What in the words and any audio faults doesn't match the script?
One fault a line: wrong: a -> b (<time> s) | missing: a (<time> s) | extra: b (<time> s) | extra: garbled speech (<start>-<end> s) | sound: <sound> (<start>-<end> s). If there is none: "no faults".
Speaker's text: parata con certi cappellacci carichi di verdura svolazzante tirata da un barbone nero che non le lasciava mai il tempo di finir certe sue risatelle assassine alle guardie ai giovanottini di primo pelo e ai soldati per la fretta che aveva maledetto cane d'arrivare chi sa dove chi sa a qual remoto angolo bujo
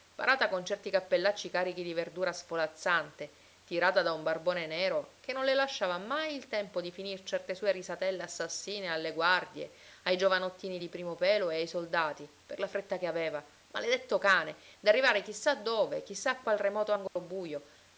sound: dropout (17.1-17.2 s)